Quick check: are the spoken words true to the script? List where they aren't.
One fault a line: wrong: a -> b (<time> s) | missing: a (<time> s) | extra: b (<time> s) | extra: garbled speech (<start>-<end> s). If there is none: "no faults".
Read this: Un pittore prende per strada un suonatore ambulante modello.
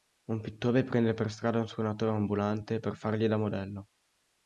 extra: per fargli da (2.8 s)